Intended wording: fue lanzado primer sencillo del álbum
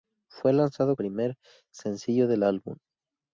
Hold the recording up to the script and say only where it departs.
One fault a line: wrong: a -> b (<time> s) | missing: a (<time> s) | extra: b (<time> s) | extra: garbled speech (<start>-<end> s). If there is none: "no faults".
no faults